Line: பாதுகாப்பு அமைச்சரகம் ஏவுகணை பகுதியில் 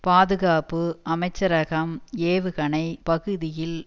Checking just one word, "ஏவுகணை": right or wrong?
right